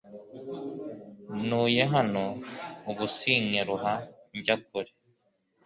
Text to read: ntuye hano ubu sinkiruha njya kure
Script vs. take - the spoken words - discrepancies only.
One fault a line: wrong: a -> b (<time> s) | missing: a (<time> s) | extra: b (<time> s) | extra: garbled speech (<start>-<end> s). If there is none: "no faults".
no faults